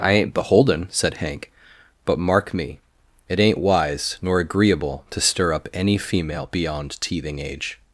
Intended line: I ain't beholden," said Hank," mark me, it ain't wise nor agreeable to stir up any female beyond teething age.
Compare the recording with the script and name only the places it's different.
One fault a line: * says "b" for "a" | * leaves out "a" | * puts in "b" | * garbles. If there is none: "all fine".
* puts in "but"